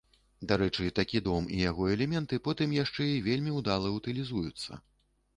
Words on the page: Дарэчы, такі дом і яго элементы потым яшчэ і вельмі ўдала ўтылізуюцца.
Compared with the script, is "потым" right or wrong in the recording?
right